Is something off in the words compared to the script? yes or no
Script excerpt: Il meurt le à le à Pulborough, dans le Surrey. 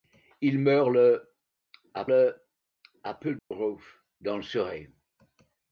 no